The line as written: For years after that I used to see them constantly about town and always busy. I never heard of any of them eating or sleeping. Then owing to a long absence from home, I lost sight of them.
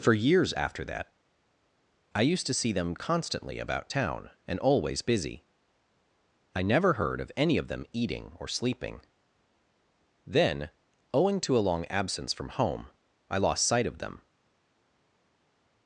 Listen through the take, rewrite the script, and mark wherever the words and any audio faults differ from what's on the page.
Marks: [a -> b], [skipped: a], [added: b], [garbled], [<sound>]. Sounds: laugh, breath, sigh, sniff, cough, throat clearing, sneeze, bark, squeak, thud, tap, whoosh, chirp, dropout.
For years after that I used to see them constantly about town and always busy. I never heard of any of them eating or sleeping. Then owing to a long absence from home, I lost sight of them.